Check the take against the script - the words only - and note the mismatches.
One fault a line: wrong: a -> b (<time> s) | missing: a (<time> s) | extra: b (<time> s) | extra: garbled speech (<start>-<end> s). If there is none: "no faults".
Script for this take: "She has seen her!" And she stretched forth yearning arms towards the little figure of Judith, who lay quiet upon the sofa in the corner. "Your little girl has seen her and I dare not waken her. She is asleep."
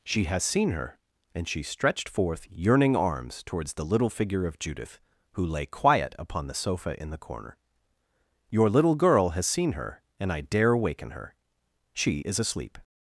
missing: not (10.8 s)